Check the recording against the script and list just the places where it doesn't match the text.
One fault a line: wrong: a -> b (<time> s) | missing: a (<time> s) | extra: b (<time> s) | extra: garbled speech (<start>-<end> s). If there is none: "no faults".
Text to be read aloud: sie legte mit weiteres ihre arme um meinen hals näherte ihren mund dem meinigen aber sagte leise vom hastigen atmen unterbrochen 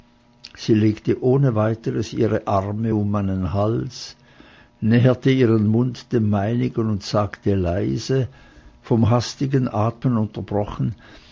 wrong: mit -> ohne (1.2 s)
wrong: aber -> und (6.9 s)